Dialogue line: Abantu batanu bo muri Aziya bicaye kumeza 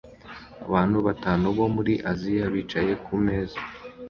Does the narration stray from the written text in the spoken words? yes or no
no